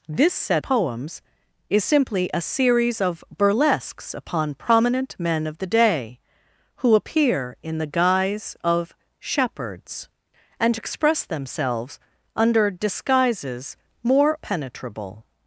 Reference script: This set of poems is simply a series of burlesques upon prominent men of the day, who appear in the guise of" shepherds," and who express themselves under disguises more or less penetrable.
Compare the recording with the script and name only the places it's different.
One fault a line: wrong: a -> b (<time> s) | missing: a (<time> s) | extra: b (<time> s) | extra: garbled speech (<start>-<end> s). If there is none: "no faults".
missing: of (0.6 s)
missing: who (10.8 s)
missing: or less (14.3 s)